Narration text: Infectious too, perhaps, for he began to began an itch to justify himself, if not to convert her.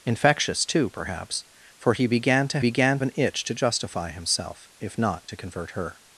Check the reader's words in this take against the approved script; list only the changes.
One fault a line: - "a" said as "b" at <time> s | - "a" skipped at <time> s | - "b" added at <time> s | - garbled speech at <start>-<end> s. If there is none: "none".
none